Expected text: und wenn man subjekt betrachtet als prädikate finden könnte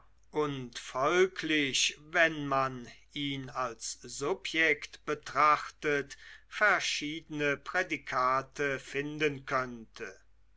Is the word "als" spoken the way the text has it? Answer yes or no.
no